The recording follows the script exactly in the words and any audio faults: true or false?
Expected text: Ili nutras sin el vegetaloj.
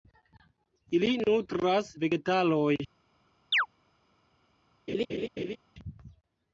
false